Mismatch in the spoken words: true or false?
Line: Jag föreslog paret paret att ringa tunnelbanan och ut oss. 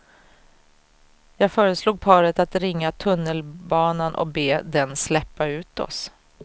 true